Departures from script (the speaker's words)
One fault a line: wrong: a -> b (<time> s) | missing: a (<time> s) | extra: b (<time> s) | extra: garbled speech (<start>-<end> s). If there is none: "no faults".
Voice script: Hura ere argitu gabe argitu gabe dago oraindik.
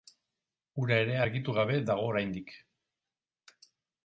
missing: argitu gabe (1.8 s)